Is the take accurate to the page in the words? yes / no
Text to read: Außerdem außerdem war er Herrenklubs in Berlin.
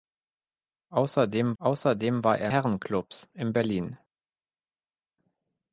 yes